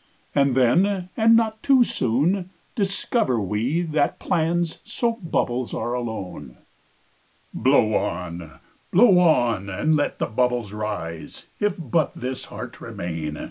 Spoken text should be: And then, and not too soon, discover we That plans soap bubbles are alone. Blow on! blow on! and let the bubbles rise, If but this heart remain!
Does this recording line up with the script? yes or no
yes